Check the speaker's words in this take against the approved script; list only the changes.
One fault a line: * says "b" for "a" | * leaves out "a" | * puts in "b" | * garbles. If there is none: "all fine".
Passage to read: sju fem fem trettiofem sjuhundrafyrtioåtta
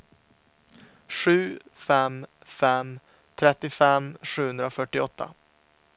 all fine